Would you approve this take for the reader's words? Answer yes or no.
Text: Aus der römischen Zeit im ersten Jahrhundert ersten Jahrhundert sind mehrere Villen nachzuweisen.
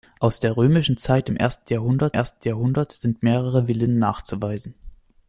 yes